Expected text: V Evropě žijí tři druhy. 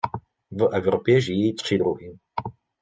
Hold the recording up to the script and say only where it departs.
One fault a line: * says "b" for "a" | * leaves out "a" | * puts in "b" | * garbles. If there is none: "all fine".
all fine